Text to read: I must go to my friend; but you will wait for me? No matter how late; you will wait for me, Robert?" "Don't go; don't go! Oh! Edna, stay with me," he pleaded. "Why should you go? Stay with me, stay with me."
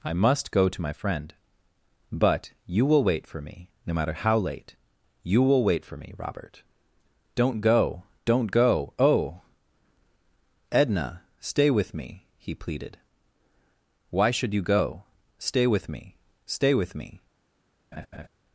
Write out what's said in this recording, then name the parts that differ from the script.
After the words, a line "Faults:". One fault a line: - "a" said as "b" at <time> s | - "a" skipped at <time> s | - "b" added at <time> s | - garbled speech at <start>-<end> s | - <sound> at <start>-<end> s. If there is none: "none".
I must go to my friend; but you will wait for me? No matter how late; you will wait for me, Robert?" "Don't go; don't go! Oh! Edna, stay with me," he pleaded. "Why should you go? Stay with me, stay with me."
Faults:
- laugh at 17.9-18.3 s